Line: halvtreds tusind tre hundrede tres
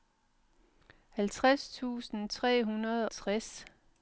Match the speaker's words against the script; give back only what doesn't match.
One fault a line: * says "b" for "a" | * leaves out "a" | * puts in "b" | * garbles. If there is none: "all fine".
all fine